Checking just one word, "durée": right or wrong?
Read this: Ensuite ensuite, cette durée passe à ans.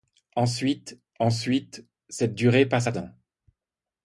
right